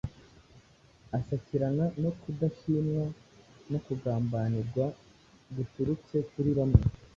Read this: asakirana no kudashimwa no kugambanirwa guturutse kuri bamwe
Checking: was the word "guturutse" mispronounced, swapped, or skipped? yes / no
no